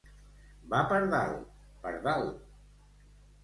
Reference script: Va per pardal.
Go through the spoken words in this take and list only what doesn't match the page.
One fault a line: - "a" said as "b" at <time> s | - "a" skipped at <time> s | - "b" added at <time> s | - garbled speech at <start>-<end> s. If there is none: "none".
- "dalt" added at 1.1 s